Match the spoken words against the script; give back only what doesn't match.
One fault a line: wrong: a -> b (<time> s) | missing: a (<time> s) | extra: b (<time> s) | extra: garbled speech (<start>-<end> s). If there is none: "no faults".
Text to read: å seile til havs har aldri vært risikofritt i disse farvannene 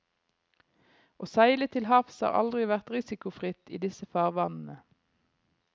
no faults